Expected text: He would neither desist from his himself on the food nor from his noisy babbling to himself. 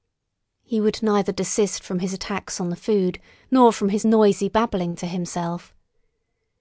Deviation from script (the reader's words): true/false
true